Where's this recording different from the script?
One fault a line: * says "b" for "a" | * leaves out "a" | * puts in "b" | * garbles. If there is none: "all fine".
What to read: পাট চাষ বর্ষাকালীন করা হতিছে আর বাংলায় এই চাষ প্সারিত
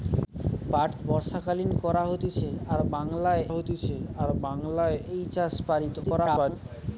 * leaves out "চাষ"
* puts in "হতিছে আর বাংলায়"
* garbles